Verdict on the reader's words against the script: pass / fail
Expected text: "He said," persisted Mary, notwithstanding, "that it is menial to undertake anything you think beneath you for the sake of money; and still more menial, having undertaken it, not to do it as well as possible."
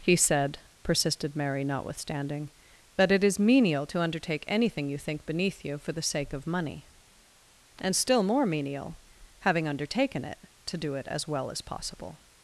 fail